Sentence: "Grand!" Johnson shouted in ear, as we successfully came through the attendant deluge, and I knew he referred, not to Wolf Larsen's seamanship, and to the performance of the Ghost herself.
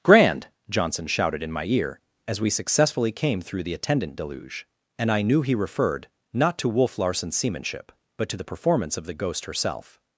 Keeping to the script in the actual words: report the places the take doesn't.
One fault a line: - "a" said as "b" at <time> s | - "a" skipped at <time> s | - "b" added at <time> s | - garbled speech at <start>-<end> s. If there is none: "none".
- "my" added at 1.5 s
- "and" said as "but" at 8.2 s